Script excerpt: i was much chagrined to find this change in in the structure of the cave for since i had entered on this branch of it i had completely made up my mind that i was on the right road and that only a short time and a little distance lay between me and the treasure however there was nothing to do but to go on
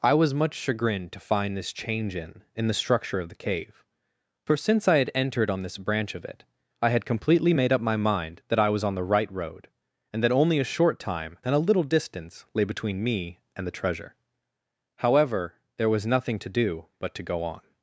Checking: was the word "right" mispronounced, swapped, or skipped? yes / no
no